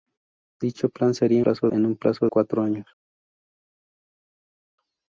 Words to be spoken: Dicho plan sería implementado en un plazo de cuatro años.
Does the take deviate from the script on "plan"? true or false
false